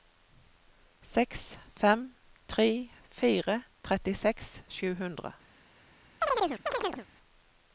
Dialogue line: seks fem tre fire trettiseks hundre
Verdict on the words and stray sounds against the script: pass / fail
fail